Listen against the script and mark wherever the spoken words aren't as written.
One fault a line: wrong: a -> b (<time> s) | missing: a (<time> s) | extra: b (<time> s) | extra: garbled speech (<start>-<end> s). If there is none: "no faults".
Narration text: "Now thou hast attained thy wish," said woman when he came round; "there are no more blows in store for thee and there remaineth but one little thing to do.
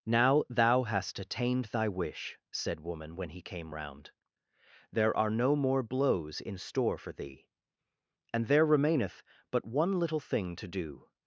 no faults